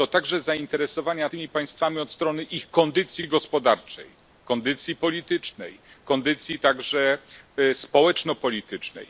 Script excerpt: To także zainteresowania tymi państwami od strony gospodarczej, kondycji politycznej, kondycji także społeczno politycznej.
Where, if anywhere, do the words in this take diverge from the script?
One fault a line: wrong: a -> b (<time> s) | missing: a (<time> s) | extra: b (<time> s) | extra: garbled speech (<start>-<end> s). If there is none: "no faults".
extra: ich kondycji (2.4 s)